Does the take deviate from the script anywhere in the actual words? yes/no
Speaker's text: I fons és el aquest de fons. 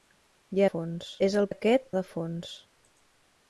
no